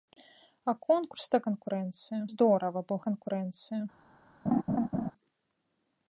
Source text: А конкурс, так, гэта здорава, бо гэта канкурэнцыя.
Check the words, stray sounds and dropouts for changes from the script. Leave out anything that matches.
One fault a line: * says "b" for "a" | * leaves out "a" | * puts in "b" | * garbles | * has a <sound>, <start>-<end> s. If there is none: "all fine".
* says "канкурэнцыя" for "гэта"
* leaves out "гэта"
* has a laugh, 4.5-5.1 s